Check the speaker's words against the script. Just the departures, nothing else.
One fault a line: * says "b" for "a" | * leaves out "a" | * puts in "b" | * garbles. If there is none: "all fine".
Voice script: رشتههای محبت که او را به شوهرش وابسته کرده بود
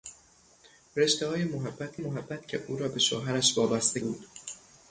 * puts in "محبت"
* leaves out "کرده"